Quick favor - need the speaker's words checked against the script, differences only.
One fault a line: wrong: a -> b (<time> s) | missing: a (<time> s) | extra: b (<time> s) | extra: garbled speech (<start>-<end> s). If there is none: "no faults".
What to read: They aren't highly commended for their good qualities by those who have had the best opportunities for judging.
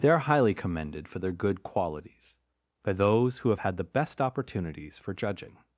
wrong: aren't -> are (0.1 s)